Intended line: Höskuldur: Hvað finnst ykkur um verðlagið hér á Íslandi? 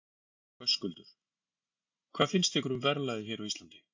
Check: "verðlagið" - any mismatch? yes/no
no